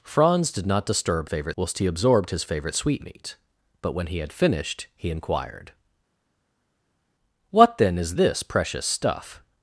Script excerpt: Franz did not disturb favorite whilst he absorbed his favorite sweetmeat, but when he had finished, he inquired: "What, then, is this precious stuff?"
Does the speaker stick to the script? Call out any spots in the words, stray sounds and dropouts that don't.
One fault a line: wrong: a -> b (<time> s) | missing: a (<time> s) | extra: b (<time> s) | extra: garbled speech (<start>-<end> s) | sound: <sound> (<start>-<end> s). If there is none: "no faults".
no faults